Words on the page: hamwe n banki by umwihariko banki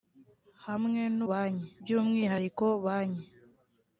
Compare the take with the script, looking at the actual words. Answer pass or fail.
pass